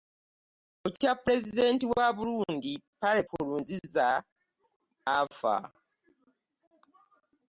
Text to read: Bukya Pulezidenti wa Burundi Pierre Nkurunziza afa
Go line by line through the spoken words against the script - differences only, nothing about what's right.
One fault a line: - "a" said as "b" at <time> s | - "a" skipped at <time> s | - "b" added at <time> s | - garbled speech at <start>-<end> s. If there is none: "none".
none